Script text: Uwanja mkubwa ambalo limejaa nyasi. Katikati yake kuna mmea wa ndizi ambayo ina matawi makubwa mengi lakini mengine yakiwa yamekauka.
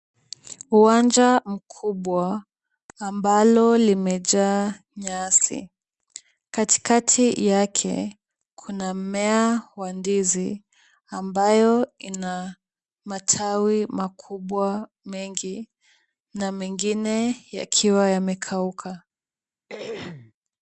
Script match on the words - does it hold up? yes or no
no